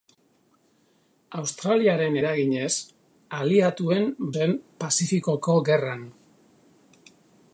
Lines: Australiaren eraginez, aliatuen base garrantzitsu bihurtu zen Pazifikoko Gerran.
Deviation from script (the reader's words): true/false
true